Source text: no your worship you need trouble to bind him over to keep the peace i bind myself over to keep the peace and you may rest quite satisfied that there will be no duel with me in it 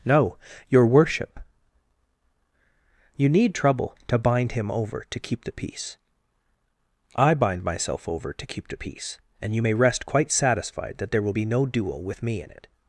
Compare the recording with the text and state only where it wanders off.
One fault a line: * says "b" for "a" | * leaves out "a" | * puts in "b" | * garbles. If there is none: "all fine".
all fine